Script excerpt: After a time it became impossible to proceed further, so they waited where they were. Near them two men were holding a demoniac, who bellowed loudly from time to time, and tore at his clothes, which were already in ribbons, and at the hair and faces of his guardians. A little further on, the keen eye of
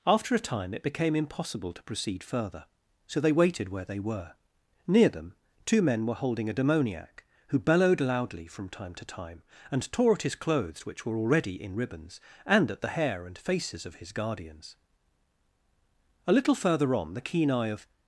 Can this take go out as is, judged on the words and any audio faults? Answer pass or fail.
pass